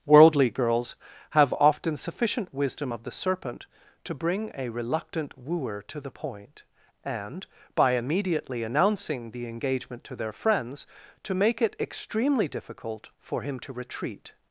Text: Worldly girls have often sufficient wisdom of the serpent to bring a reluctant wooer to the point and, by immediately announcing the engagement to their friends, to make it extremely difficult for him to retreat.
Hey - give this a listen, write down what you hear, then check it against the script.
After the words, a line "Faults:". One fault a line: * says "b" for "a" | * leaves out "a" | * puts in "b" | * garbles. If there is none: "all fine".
Worldly girls have often sufficient wisdom of the serpent to bring a reluctant wooer to the point and, by immediately announcing the engagement to their friends, to make it extremely difficult for him to retreat.
Faults:
all fine